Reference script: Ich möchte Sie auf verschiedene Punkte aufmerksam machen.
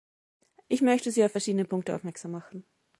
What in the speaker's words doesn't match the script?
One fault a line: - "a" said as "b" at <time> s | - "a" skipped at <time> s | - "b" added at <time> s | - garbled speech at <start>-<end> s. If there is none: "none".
none